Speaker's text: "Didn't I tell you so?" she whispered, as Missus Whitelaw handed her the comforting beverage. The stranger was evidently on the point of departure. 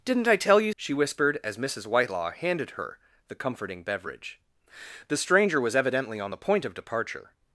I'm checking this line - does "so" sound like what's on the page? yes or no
no